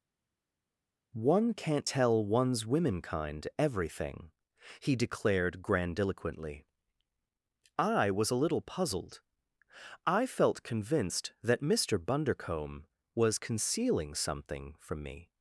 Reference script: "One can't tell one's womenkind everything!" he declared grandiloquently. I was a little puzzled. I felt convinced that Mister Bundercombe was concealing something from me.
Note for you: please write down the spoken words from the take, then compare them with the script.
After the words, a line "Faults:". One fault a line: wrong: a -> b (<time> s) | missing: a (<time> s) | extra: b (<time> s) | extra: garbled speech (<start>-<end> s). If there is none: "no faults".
"One can't tell one's womenkind everything!" he declared grandiloquently. I was a little puzzled. I felt convinced that Mister Bundercombe was concealing something from me.
Faults:
no faults